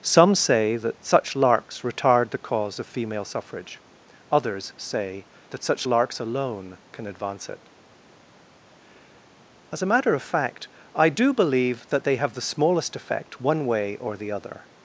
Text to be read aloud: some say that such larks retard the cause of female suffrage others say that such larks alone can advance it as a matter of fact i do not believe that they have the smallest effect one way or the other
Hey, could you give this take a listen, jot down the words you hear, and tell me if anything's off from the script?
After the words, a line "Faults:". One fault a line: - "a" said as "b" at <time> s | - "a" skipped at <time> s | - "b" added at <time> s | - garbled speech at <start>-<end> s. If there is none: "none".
some say that such larks retard the cause of female suffrage others say that such larks alone can advance it as a matter of fact i do believe that they have the smallest effect one way or the other
Faults:
- "not" skipped at 11.3 s